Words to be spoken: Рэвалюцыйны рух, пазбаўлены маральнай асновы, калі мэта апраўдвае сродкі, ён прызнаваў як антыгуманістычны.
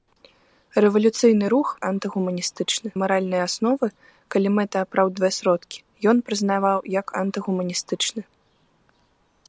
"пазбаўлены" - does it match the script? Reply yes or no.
no